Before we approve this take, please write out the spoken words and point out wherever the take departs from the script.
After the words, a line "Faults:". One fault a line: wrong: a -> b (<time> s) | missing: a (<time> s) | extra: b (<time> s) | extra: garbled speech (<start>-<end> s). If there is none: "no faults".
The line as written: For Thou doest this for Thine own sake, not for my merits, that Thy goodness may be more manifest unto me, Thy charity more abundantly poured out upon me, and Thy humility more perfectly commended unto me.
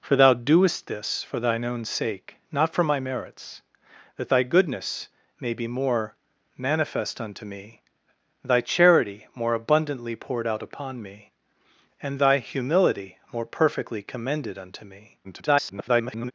For Thou doest this for Thine own sake, not for my merits, that Thy goodness may be more manifest unto me, Thy charity more abundantly poured out upon me, and Thy humility more perfectly commended unto me. [garbled]
Faults:
extra: garbled speech (15.2-16.3 s)